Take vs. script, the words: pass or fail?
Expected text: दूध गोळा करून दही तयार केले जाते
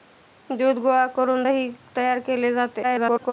fail